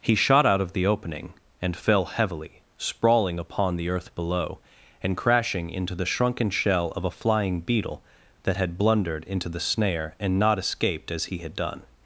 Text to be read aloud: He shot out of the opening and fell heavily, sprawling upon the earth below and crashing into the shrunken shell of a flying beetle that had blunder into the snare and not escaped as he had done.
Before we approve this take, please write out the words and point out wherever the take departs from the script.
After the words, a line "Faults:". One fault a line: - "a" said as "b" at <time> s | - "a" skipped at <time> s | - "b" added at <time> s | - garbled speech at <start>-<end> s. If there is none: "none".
He shot out of the opening and fell heavily, sprawling upon the earth below and crashing into the shrunken shell of a flying beetle that had blundered into the snare and not escaped as he had done.
Faults:
- "blunder" said as "blundered" at 8.8 s